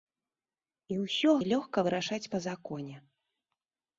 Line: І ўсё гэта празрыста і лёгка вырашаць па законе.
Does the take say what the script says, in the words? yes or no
no